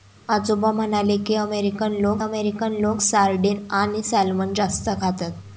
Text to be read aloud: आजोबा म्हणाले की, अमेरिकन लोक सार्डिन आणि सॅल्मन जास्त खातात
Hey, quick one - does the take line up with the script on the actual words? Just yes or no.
no